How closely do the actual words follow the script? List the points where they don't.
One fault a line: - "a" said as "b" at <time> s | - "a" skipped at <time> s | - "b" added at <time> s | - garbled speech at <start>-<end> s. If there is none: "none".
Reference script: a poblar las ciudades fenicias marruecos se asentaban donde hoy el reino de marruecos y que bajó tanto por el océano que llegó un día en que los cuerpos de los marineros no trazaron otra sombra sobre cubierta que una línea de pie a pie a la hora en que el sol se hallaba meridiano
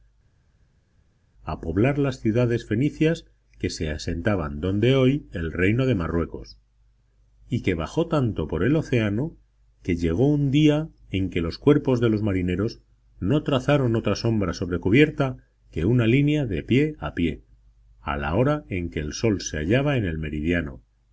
- "marruecos" said as "que" at 3.6 s
- "en el" added at 20.0 s